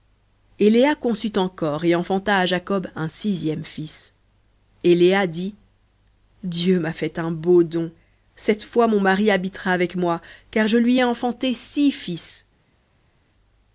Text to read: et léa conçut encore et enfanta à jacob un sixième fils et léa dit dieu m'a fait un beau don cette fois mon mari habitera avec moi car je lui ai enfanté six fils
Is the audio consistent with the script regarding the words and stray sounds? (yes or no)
yes